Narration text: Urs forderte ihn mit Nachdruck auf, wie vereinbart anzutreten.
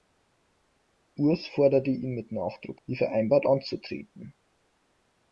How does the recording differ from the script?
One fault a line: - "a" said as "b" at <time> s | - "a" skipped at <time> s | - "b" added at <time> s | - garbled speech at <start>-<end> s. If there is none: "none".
- "auf" skipped at 2.8 s